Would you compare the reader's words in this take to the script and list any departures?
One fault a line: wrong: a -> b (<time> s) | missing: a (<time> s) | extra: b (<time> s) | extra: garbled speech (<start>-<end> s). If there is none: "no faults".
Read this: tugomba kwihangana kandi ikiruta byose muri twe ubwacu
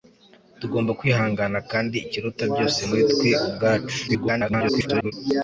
extra: garbled speech (4.1-5.1 s)